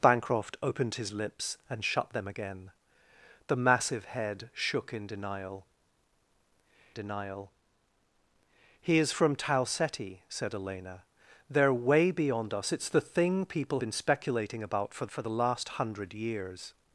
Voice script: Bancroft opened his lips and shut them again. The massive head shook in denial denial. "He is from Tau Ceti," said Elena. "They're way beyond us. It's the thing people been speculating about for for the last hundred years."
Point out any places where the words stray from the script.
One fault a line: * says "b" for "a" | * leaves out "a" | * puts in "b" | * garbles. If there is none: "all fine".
all fine